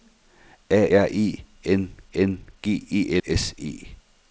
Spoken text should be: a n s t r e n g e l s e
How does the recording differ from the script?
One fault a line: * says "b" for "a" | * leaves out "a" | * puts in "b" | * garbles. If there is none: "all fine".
* leaves out "n s t"
* puts in "n"
* leaves out "l"